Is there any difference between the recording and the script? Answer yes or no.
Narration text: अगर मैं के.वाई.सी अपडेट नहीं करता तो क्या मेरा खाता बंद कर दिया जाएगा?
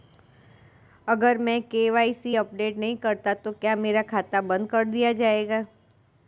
no